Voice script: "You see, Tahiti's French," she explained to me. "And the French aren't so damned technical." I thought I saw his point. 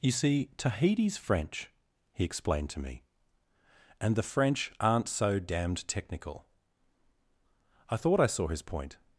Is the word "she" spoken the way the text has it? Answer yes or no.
no